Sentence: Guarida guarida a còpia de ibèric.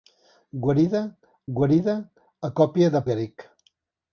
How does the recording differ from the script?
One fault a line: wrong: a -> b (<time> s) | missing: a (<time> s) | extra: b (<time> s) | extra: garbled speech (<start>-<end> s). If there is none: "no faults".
no faults